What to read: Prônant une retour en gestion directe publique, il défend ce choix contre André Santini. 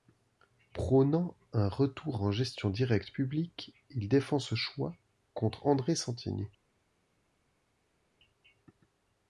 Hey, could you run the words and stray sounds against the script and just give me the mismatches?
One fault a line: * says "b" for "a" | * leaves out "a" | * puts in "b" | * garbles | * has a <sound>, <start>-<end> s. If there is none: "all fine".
* says "un" for "une"